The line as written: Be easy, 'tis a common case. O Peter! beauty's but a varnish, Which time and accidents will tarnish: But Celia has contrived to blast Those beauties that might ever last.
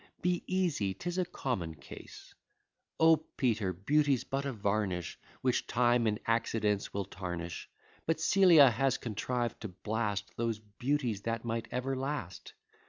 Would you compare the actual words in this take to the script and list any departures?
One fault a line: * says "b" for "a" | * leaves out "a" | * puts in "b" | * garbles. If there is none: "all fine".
all fine